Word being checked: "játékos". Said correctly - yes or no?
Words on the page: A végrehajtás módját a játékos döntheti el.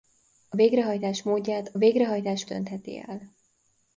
no